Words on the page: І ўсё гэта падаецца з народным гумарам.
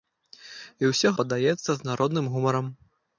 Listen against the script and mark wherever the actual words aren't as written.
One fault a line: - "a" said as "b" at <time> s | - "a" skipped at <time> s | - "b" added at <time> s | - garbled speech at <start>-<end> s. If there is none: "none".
- "гэта" skipped at 1.1 s